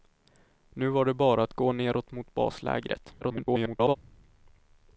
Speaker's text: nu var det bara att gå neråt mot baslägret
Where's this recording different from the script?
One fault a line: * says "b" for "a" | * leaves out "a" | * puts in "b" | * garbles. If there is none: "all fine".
* garbles